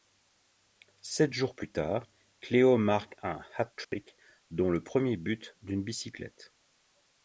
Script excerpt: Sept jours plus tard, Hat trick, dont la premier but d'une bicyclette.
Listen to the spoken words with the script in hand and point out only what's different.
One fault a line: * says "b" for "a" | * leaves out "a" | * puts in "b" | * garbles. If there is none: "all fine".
* puts in "Cléo marque un"
* says "le" for "la"